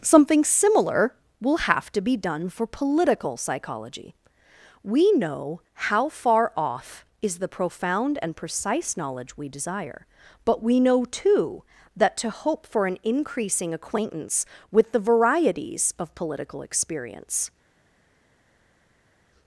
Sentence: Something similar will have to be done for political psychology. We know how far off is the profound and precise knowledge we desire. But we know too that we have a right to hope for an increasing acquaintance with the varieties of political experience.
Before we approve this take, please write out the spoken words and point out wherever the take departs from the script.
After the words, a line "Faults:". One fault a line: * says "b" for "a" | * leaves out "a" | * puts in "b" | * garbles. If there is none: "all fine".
Something similar will have to be done for political psychology. We know how far off is the profound and precise knowledge we desire. But we know too that to hope for an increasing acquaintance with the varieties of political experience.
Faults:
* leaves out "we have a right"